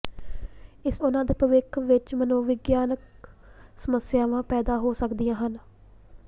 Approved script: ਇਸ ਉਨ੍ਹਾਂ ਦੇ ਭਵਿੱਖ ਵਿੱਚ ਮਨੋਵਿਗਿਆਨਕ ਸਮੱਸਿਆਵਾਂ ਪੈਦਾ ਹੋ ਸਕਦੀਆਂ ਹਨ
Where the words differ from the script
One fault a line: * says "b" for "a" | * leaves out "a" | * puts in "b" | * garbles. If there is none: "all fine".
all fine